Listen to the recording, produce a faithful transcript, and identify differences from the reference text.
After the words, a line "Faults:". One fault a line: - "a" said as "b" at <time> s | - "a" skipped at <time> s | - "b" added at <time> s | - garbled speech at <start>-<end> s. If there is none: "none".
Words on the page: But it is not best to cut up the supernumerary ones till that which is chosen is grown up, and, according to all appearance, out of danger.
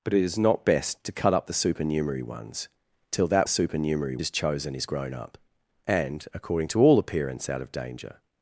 But it is not best to cut up the supernumerary ones till that supernumerary is chosen is grown up, and, according to all appearance, out of danger.
Faults:
- "which" said as "supernumerary" at 3.5 s